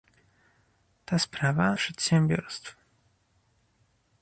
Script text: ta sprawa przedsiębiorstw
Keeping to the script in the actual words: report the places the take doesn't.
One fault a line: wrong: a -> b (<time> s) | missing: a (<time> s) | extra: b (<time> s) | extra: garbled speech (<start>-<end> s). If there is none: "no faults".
no faults